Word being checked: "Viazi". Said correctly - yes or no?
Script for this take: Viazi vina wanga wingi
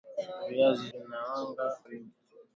yes